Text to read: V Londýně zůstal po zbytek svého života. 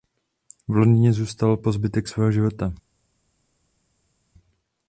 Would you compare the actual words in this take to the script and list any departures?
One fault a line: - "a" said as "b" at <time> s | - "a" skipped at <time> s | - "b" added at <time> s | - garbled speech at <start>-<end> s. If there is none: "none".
none